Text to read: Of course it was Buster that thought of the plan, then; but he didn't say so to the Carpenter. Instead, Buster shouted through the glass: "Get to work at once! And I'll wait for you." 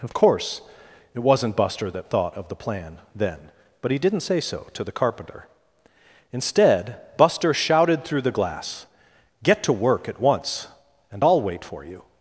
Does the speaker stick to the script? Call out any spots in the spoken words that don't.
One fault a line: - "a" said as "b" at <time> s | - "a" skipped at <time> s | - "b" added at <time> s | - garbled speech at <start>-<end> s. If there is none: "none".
- "was" said as "wasn't" at 1.2 s